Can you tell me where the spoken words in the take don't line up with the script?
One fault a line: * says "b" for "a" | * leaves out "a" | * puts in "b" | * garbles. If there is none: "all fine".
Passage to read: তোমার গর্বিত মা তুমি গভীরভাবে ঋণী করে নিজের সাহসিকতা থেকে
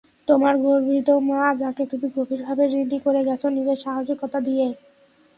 * puts in "যাকে"
* puts in "গেছ"
* says "দিয়ে" for "থেকে"